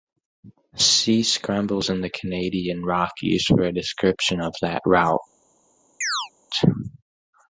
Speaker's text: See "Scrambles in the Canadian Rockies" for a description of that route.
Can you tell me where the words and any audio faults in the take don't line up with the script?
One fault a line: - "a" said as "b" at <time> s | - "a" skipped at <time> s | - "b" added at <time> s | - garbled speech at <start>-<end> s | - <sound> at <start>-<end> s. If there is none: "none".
- chirp at 6.0-6.3 s